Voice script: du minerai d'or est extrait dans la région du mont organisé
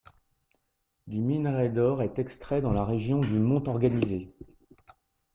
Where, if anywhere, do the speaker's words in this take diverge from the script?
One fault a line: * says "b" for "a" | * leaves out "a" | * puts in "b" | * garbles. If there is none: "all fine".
all fine